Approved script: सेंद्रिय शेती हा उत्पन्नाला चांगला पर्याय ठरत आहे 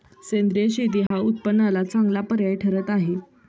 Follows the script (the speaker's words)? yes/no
yes